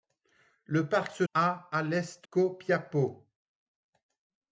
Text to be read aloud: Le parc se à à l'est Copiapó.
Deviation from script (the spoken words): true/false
false